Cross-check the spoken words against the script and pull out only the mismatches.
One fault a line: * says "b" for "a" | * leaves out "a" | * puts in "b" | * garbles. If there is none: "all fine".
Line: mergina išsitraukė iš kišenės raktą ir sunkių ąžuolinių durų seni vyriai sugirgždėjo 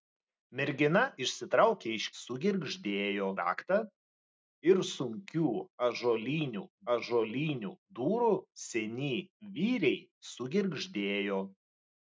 * says "sugirgždėjo" for "kišenės"
* puts in "ąžuolinių"